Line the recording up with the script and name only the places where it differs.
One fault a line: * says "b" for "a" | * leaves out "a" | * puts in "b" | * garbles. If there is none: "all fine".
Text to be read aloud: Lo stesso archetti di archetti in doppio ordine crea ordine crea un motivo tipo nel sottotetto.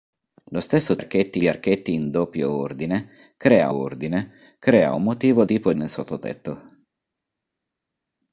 all fine